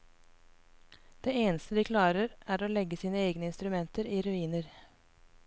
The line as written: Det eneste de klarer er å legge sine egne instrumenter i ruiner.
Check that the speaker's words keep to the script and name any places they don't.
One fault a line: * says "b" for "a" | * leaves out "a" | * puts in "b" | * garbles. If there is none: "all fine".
all fine